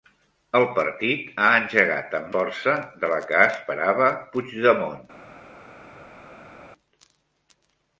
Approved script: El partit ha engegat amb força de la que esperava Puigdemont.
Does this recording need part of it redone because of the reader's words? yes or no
no